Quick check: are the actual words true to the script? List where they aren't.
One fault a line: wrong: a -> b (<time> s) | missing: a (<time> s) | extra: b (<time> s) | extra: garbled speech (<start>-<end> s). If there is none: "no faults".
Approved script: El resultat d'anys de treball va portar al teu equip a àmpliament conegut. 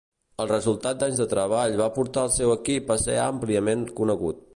wrong: teu -> seu (2.3 s)
extra: ser (3.0 s)